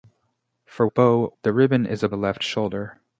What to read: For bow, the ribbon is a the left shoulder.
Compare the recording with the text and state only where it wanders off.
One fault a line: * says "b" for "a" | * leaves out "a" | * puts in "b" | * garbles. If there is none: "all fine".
all fine